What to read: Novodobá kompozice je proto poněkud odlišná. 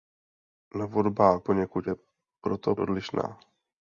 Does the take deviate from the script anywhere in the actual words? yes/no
yes